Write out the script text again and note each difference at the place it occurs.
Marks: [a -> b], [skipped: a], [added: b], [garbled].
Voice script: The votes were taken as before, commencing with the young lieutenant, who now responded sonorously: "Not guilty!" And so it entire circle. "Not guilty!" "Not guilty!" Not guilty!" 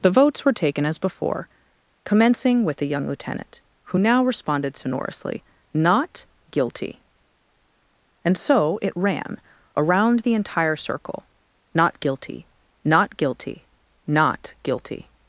The votes were taken as before, commencing with the young lieutenant, who now responded sonorously: "Not guilty!" And so it [added: ran around the] entire circle. "Not guilty!" "Not guilty!" Not guilty!"